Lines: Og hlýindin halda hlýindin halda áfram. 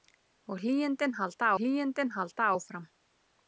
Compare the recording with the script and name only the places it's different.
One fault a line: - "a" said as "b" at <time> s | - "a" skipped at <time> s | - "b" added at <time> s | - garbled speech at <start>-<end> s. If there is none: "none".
none